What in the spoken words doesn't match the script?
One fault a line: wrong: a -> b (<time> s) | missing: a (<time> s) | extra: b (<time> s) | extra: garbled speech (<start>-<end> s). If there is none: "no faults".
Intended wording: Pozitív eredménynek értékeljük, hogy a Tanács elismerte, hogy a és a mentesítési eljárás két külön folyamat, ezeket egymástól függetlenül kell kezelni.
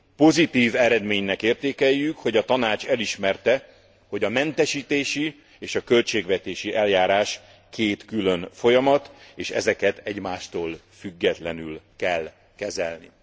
extra: mentesítési (4.3 s)
wrong: mentesítési -> költségvetési (5.8 s)
extra: és (9.3 s)